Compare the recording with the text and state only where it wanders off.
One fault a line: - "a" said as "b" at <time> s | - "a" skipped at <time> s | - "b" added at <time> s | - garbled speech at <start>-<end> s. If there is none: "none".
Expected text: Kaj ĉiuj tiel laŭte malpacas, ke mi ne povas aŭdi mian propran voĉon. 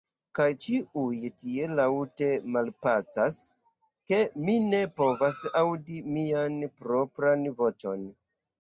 none